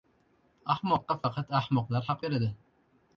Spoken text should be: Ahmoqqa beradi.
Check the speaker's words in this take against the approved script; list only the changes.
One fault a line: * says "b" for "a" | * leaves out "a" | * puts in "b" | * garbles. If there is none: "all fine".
* puts in "faqat ahmoqlar haq"